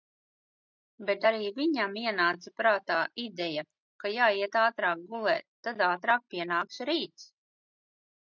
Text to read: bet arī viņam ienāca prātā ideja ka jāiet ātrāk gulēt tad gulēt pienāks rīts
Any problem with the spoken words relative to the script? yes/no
yes